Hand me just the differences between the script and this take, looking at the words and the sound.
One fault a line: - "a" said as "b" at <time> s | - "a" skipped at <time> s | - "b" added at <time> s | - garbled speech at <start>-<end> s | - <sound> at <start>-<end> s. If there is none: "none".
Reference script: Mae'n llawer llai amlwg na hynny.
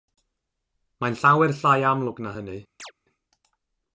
- chirp at 2.8-2.9 s